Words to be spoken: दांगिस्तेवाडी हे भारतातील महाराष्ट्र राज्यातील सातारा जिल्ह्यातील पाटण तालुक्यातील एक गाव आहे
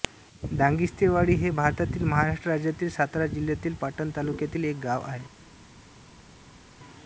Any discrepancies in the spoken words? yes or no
no